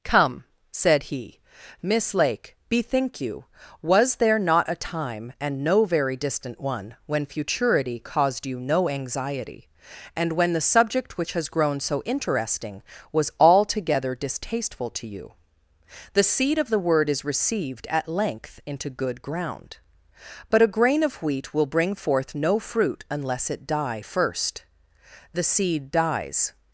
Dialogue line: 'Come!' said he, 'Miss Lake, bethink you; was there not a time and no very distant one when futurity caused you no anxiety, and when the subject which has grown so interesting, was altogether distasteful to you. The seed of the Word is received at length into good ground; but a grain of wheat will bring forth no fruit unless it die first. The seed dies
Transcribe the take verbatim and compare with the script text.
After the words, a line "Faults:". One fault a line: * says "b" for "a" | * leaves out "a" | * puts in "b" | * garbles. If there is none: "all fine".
'Come!' said he, 'Miss Lake, bethink you; was there not a time and no very distant one when futurity caused you no anxiety, and when the subject which has grown so interesting, was altogether distasteful to you. The seed of the Word is received at length into good ground; but a grain of wheat will bring forth no fruit unless it die first. The seed dies
Faults:
all fine